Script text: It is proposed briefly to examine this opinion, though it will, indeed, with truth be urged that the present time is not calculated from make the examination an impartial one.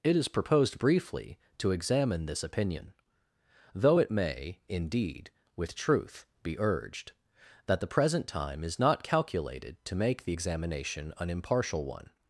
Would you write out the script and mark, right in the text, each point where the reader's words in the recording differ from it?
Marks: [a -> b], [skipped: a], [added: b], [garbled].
It is proposed briefly to examine this opinion, though it [will, -> may] indeed, with truth be urged that the present time is not calculated [from -> to] make the examination an impartial one.